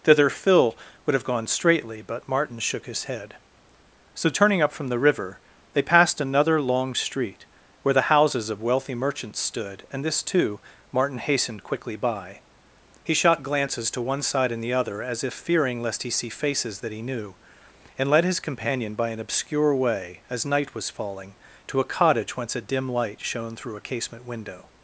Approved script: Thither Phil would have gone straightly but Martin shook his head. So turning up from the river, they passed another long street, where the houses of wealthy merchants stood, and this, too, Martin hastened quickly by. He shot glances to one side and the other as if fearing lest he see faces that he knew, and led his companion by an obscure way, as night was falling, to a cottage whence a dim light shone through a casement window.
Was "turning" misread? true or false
false